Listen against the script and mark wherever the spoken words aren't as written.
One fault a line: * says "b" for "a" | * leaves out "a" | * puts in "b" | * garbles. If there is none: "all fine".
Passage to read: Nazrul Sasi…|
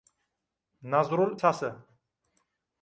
all fine